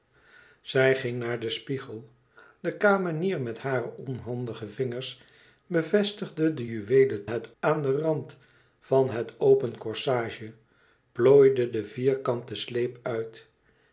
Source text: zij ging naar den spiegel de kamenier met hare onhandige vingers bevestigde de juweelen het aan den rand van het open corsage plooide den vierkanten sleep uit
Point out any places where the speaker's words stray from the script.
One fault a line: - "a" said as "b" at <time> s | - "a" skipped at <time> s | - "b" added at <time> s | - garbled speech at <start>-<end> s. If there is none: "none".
none